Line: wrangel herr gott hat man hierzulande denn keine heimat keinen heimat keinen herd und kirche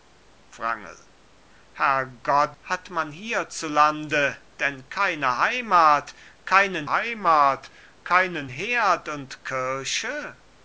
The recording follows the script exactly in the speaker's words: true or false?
true